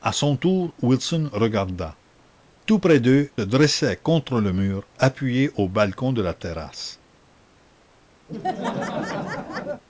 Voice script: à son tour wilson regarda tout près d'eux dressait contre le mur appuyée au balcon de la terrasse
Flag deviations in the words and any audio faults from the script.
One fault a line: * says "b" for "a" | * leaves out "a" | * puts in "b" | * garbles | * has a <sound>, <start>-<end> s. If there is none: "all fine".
* has a laugh, 8.3-9.8 s